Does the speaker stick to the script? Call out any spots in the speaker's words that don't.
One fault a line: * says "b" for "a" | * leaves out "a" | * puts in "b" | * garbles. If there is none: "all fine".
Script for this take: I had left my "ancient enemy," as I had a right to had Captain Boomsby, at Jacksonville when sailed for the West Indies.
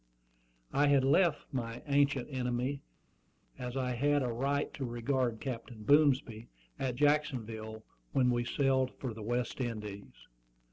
* says "regard" for "had"
* puts in "we"